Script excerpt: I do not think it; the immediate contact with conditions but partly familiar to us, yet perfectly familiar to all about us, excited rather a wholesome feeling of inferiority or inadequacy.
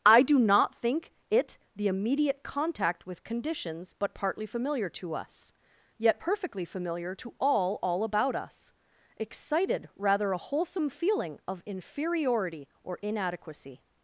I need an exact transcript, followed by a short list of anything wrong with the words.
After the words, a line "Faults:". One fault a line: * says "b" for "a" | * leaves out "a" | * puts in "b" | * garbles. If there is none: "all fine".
I do not think it; the immediate contact with conditions but partly familiar to us, yet perfectly familiar to all all about us, excited rather a wholesome feeling of inferiority or inadequacy.
Faults:
* puts in "all"